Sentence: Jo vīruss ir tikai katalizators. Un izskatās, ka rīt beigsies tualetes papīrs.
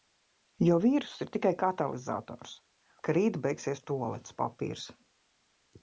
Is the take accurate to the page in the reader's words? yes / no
no